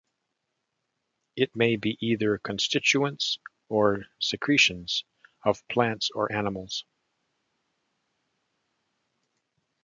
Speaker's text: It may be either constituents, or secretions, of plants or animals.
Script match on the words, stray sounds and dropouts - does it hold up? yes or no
yes